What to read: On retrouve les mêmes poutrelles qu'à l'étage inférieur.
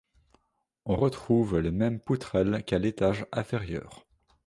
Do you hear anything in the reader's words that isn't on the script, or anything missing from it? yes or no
no